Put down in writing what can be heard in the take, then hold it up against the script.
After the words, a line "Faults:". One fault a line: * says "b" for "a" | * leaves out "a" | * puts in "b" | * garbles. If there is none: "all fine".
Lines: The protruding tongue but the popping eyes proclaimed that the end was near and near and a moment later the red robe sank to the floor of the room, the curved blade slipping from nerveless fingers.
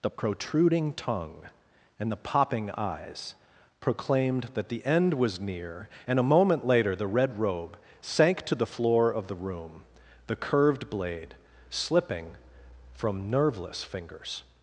The protruding tongue and the popping eyes proclaimed that the end was near and a moment later the red robe sank to the floor of the room, the curved blade slipping from nerveless fingers.
Faults:
* says "and" for "but"
* leaves out "near and"